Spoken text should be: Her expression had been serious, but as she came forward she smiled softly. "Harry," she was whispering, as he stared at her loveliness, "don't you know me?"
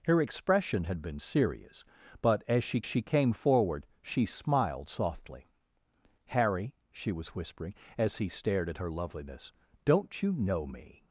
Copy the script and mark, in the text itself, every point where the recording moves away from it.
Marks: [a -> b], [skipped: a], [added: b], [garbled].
Her expression had been serious, but as she [added: she] came forward she smiled softly. "Harry," she was whispering, as he stared at her loveliness, "don't you know me?"